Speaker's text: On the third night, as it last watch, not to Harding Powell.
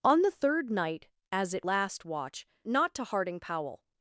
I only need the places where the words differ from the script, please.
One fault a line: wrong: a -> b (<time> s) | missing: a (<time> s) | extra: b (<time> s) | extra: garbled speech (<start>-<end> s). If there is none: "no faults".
no faults